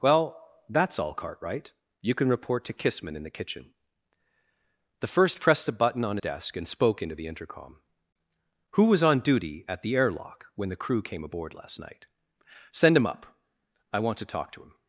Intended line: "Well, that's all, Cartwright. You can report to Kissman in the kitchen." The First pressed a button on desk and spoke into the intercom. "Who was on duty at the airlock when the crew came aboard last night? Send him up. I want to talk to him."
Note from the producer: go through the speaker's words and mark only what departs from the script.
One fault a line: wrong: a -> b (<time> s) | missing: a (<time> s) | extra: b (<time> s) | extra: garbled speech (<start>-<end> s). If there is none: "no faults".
no faults